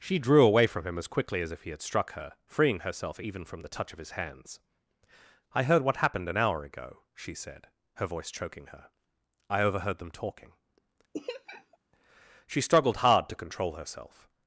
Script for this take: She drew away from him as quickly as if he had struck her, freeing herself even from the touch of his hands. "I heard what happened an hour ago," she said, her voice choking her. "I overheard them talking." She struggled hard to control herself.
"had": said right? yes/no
yes